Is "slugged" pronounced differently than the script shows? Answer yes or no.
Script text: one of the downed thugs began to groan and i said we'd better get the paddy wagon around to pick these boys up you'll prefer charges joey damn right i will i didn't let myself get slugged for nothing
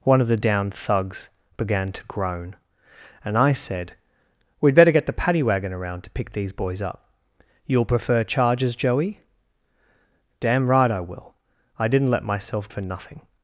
yes